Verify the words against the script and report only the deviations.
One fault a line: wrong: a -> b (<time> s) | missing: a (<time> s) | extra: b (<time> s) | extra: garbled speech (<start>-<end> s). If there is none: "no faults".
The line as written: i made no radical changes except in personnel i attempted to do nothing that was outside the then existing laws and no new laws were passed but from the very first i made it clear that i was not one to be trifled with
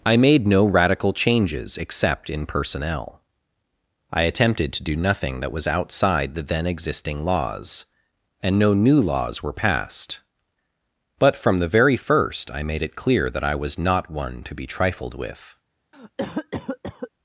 no faults